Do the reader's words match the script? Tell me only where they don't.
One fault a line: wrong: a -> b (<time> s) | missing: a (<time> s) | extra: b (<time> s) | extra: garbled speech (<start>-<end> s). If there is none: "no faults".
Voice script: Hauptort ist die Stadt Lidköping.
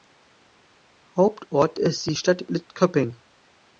no faults